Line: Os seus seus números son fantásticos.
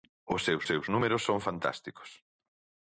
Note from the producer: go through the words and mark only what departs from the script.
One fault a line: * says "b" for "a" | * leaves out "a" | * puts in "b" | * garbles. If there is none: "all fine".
all fine